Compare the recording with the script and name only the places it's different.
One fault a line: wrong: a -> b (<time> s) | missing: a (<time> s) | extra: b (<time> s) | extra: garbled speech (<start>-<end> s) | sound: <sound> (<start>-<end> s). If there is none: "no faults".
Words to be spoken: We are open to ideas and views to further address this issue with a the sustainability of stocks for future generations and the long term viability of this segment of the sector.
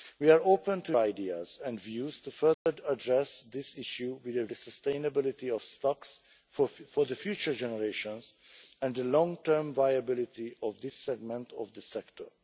sound: dropout (2.5-2.7 s)